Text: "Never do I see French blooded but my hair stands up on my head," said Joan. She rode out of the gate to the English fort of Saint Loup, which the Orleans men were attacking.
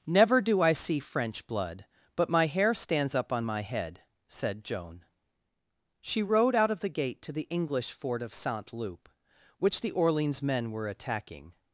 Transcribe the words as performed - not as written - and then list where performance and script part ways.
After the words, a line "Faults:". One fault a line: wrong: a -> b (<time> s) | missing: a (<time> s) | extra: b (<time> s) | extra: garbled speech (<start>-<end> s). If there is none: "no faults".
"Never do I see French blood but my hair stands up on my head," said Joan. She rode out of the gate to the English fort of Saint Loup, which the Orleans men were attacking.
Faults:
wrong: blooded -> blood (1.4 s)